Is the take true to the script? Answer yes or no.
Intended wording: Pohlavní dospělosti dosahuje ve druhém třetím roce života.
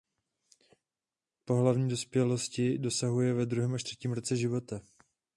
no